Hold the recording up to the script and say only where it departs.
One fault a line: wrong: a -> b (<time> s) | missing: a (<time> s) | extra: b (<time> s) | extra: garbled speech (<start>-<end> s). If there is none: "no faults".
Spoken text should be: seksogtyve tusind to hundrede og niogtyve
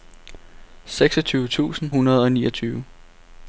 missing: to (1.9 s)